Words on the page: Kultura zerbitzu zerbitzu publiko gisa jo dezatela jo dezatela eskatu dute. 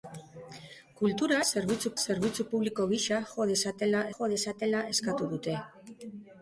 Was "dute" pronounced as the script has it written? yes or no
yes